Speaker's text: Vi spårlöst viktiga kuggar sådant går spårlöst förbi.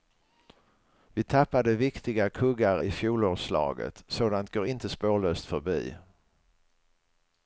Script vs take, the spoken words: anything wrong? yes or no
yes